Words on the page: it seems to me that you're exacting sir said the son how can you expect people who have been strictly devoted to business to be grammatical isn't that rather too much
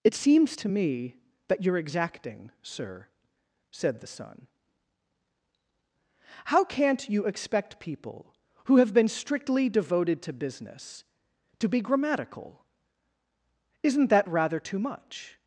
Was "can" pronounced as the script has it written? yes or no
no